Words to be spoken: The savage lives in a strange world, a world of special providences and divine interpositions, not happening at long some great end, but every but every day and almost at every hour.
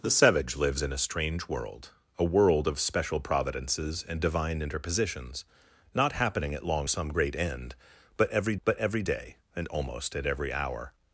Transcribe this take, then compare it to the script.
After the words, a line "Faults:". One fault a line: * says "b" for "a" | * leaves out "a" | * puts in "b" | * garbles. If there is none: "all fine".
The savage lives in a strange world, a world of special providences and divine interpositions, not happening at long some great end, but every but every day and almost at every hour.
Faults:
all fine